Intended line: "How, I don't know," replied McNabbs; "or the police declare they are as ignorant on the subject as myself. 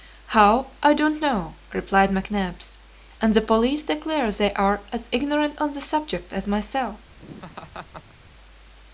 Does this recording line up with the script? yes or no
no